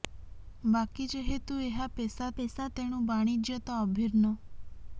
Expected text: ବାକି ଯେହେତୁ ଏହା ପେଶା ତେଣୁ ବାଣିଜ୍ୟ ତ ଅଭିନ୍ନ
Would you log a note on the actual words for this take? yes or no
yes